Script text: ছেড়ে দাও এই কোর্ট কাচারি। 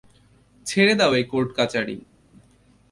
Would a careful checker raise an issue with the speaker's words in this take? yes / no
no